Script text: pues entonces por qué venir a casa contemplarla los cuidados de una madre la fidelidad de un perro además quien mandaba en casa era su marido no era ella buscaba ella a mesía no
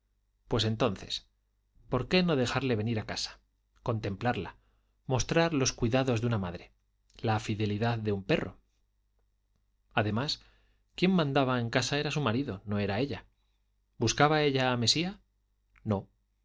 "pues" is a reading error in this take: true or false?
false